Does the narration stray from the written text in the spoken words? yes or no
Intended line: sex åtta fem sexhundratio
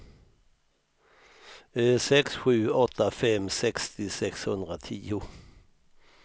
yes